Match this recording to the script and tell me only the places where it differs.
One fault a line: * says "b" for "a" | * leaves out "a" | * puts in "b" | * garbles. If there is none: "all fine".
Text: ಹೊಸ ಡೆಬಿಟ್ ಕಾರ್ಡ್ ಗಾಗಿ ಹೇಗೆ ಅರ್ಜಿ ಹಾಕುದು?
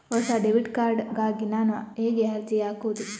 * puts in "ನಾನು"